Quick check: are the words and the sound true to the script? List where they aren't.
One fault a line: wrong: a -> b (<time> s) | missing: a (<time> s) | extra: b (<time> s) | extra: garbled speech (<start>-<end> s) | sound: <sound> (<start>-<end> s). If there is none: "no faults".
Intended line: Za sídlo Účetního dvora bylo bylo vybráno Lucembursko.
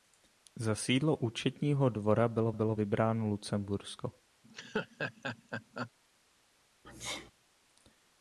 sound: laugh (4.4-5.9 s)
sound: sneeze (6.8-7.3 s)